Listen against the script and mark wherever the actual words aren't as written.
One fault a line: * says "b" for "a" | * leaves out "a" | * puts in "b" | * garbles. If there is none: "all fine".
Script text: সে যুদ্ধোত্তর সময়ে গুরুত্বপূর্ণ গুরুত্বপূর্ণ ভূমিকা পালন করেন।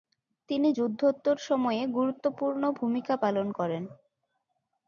* says "তিনি" for "সে"
* leaves out "গুরুত্বপূর্ণ"